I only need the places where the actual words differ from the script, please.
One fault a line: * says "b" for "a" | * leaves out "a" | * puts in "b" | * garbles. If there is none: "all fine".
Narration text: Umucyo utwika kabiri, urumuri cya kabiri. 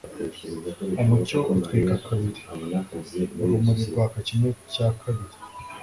* puts in "rwaka kimwe"